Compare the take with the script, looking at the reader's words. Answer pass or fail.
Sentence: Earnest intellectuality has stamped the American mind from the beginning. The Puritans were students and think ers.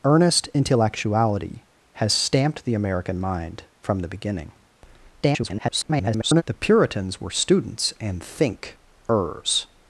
fail